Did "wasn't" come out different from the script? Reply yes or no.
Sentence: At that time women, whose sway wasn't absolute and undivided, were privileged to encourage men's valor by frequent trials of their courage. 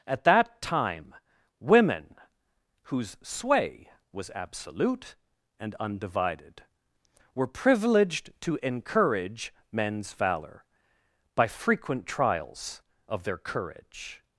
yes